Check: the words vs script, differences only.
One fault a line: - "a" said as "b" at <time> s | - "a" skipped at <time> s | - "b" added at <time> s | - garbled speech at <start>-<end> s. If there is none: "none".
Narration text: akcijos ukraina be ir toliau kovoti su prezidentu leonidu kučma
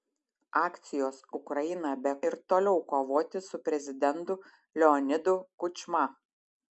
none